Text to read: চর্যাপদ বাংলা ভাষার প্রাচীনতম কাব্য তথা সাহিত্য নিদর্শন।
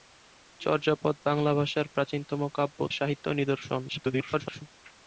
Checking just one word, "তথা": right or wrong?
wrong